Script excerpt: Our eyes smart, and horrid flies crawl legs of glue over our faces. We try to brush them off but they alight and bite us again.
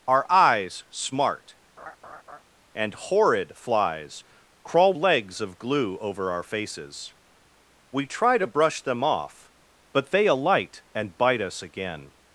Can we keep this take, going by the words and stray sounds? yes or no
no